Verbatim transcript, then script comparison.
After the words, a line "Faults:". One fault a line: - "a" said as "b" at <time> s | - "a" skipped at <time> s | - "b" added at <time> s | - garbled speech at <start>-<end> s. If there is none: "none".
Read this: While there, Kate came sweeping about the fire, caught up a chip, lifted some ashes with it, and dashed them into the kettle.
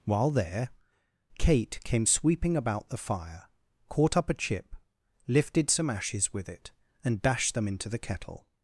While there, Kate came sweeping about the fire, caught up a chip, lifted some ashes with it, and dashed them into the kettle.
Faults:
none